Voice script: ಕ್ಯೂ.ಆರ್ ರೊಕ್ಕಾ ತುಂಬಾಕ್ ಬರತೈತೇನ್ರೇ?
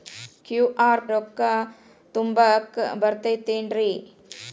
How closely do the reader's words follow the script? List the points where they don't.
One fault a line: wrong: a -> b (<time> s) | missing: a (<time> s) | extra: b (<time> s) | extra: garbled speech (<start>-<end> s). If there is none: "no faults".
no faults